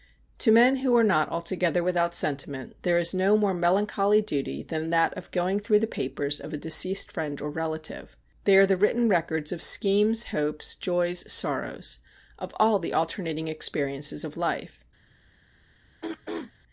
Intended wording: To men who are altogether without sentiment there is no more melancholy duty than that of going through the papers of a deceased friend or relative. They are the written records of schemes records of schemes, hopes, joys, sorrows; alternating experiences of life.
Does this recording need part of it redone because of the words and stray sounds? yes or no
yes